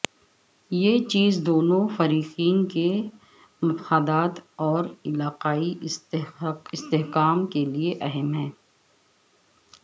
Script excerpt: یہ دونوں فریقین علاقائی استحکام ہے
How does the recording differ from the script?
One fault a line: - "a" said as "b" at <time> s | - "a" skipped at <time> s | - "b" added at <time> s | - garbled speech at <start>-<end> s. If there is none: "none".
- "چیز" added at 1.1 s
- "کے مفادات اور" added at 2.7 s
- "کے لیے اہم" added at 7.4 s